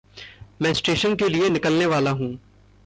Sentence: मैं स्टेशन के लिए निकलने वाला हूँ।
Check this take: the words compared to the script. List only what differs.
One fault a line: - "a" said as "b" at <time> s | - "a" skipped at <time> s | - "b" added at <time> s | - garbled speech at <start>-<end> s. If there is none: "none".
none